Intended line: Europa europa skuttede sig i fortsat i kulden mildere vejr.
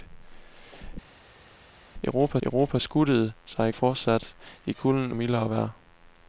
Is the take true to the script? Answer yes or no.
yes